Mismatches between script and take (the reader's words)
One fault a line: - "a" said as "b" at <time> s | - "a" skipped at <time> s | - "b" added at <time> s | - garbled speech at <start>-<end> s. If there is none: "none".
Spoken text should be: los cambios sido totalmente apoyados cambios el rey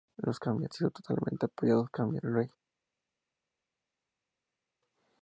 none